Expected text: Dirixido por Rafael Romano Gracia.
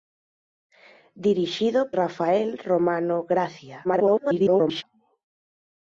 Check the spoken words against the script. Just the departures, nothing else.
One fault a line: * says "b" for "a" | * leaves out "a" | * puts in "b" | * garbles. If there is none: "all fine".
* leaves out "por"
* garbles